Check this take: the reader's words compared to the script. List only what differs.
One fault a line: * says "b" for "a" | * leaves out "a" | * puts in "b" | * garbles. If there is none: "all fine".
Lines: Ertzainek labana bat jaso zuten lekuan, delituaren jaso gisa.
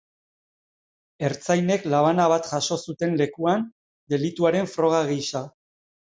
* says "froga" for "jaso"